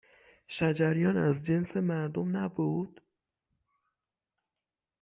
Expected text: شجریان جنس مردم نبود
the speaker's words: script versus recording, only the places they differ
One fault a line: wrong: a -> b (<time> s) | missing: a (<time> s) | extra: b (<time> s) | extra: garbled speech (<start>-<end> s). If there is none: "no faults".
extra: از (1.2 s)